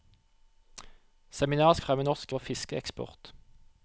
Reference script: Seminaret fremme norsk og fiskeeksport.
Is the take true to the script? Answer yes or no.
yes